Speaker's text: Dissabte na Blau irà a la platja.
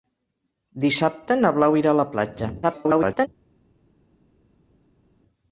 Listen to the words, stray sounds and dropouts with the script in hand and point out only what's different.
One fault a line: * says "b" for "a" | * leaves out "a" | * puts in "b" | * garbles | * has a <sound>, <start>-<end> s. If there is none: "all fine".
* garbles